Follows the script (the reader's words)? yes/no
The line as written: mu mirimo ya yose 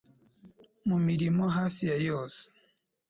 no